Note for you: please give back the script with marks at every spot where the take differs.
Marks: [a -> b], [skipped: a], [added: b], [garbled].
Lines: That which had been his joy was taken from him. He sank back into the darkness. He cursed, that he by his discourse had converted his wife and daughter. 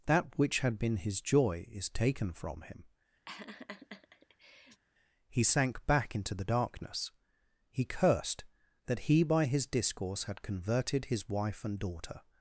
That which had been his joy [was -> is] taken from him. He sank back into the darkness. He cursed, that he by his discourse had converted his wife and daughter.